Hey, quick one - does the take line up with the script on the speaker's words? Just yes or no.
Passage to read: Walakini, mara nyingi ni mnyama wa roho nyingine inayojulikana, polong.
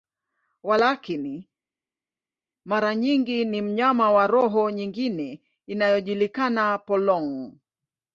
yes